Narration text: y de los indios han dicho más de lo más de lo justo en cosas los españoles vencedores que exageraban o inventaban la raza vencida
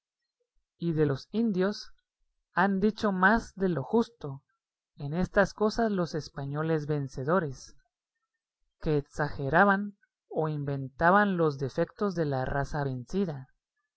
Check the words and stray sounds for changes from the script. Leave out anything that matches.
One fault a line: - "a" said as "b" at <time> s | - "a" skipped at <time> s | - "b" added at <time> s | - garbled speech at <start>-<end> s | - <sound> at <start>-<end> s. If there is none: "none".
- "más de lo" skipped at 3.8 s
- "estas" added at 5.1 s
- "los defectos de" added at 11.4 s